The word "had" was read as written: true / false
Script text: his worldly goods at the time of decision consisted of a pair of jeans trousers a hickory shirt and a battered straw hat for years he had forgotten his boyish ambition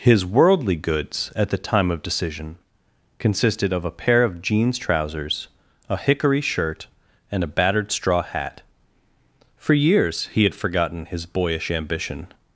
true